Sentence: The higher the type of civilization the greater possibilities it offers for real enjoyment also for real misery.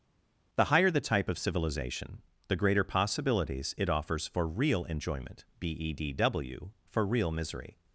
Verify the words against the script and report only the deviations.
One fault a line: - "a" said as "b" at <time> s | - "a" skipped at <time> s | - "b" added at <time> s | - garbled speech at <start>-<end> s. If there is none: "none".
- "also" said as "bedw" at 5.6 s